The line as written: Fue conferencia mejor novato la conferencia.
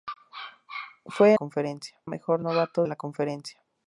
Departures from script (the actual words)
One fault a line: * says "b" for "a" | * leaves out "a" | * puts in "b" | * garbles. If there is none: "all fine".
all fine